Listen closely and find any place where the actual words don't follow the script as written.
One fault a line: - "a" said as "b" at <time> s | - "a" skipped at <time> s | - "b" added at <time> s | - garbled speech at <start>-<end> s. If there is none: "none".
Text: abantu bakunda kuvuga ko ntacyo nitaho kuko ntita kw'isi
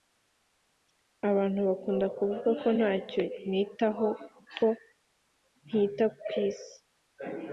none